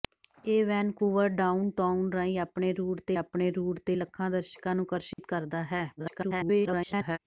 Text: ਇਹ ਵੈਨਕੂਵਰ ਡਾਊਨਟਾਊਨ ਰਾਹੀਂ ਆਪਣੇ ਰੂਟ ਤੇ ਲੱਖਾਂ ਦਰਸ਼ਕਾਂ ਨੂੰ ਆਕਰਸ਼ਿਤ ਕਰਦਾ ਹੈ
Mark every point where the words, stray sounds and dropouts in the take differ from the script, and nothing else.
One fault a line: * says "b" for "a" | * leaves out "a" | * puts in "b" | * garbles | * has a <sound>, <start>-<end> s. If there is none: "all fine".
* puts in "ਆਪਣੇ ਰੂਟ ਤੇ"
* has a dropout, 5.1-5.2 s
* garbles